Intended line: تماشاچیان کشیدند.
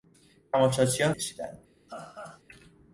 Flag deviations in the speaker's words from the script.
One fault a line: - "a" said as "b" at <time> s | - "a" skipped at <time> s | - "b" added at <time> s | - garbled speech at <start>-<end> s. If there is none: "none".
none